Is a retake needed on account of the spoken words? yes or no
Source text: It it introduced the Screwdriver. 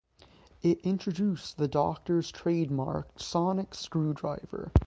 yes